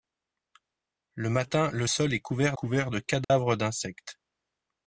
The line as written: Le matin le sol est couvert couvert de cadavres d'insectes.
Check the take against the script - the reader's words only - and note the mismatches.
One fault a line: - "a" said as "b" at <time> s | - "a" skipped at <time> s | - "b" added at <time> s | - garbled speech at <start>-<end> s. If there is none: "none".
none